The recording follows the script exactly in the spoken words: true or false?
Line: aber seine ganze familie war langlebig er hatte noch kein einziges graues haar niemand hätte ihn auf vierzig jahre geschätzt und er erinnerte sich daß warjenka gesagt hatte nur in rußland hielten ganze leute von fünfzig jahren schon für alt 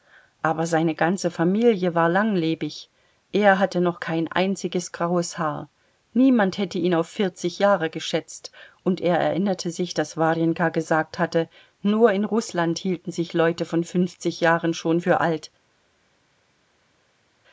false